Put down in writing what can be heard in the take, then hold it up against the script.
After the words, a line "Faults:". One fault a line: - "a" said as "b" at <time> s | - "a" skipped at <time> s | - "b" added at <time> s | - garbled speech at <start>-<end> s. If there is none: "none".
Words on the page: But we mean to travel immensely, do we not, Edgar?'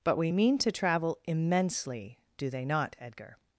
But we mean to travel immensely, do they not, Edgar?'
Faults:
- "we" said as "they" at 2.5 s